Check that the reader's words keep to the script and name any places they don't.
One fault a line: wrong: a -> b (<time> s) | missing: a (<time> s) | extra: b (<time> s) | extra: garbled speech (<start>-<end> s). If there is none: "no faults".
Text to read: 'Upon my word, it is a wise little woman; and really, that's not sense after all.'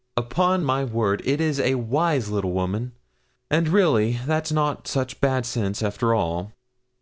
extra: such bad (4.9 s)